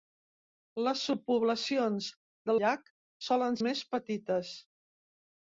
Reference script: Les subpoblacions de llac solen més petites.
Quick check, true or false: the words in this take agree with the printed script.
true